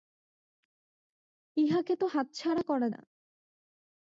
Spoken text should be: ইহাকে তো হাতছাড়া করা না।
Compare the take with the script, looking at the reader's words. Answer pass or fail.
pass